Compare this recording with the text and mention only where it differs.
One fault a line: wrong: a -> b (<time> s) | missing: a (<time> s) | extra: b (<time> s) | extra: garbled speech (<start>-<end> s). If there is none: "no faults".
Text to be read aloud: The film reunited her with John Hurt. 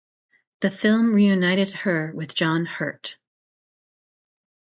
no faults